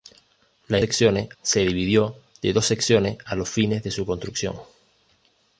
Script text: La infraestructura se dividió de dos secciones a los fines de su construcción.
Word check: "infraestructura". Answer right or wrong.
wrong